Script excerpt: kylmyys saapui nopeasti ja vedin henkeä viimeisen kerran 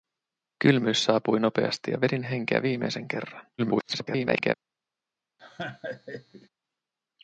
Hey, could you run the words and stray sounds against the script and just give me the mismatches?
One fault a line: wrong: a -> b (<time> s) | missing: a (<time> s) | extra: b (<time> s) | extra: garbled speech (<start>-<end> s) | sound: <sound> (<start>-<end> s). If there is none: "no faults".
extra: garbled speech (3.6-4.5 s)
sound: laugh (5.4-6.5 s)